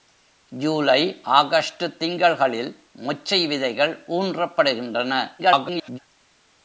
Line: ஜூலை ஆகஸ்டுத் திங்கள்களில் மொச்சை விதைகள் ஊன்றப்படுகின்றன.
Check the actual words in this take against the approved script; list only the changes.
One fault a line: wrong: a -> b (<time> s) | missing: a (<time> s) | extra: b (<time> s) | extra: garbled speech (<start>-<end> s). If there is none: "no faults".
extra: garbled speech (5.4-6.0 s)